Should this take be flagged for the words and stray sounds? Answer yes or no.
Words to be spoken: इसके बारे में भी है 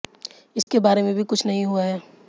yes